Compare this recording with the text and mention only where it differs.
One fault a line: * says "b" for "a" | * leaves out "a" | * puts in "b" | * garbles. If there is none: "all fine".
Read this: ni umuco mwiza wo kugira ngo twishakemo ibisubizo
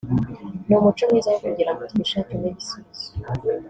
all fine